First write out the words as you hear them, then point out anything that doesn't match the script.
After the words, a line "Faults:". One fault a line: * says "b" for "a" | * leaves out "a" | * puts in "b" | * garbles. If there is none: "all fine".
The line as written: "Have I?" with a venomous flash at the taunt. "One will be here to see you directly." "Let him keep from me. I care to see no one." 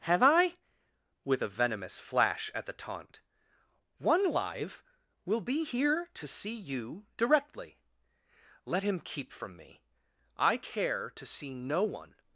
"Have I?" with a venomous flash at the taunt. "One live will be here to see you directly." "Let him keep from me. I care to see no one."
Faults:
* puts in "live"